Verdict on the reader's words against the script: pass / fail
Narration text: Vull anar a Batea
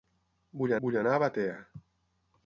fail